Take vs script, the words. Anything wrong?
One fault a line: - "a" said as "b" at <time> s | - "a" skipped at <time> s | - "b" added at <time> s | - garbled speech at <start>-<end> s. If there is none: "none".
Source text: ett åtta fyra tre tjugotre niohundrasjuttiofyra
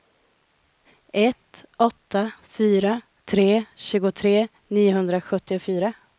none